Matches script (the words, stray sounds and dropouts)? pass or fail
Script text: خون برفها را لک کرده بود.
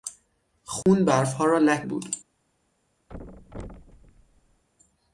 fail